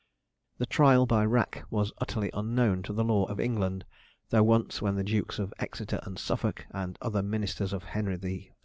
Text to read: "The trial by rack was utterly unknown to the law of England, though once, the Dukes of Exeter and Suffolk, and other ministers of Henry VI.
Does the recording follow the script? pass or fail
fail